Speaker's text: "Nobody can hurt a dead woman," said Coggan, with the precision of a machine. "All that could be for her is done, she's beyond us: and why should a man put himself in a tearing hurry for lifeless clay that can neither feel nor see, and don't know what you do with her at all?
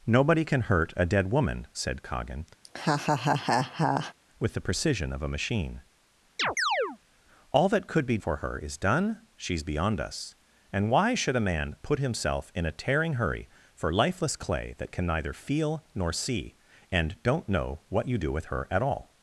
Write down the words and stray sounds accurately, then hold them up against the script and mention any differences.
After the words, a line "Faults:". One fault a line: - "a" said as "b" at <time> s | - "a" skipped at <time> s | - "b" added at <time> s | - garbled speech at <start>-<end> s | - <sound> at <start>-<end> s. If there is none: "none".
"Nobody can hurt a dead woman," said Coggan, with the precision of a machine. "All that could be for her is done, she's beyond us: and why should a man put himself in a tearing hurry for lifeless clay that can neither feel nor see, and don't know what you do with her at all?
Faults:
- laugh at 2.6-4.1 s
- chirp at 6.4-7.0 s